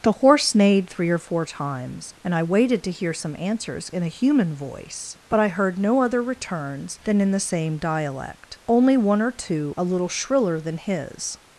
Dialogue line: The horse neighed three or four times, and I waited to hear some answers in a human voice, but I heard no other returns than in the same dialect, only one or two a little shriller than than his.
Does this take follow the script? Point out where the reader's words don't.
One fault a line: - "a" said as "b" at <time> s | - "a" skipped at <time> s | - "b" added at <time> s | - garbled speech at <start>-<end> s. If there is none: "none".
- "than" skipped at 10.8 s